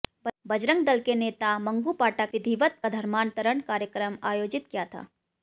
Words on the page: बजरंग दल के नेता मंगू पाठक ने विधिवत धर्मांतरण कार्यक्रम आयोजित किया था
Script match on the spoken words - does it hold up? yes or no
no